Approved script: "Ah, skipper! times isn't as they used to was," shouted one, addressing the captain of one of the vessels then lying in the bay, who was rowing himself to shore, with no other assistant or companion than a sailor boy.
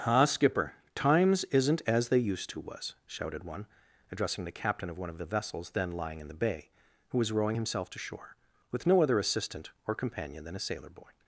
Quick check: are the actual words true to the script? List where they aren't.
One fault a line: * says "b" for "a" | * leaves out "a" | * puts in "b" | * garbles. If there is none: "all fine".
all fine